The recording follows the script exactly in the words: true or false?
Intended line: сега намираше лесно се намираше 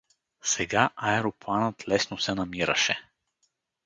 false